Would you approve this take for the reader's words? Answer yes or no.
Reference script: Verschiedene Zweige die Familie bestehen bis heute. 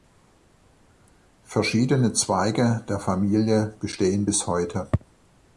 no